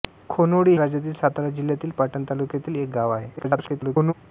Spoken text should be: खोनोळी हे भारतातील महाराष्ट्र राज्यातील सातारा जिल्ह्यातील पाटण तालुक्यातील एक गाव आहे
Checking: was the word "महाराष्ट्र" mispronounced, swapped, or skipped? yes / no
yes